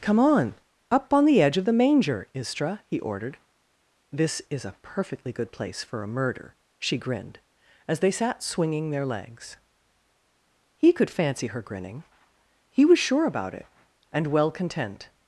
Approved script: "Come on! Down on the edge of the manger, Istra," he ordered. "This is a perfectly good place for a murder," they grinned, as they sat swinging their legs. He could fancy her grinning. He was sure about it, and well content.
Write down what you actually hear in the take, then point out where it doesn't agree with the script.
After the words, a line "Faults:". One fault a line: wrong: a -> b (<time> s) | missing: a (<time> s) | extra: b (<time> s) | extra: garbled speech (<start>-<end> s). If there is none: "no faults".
"Come on! Up on the edge of the manger, Istra," he ordered. "This is a perfectly good place for a murder," she grinned, as they sat swinging their legs. He could fancy her grinning. He was sure about it, and well content.
Faults:
wrong: Down -> Up (0.9 s)
wrong: they -> she (6.8 s)